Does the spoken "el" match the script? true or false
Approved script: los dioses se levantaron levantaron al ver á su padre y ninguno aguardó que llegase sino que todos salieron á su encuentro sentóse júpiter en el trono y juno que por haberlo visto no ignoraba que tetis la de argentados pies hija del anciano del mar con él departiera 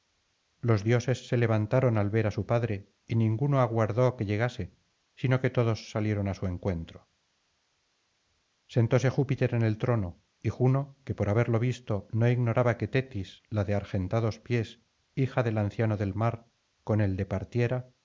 true